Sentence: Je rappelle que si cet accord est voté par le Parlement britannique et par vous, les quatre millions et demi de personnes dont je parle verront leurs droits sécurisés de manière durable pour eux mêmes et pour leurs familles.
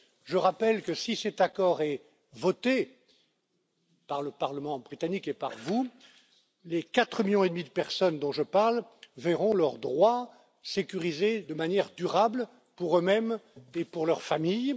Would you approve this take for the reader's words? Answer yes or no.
yes